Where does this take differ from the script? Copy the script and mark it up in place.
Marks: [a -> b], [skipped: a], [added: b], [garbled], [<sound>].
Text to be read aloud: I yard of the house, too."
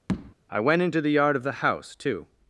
[tap] I [added: went into the] yard of the house, too."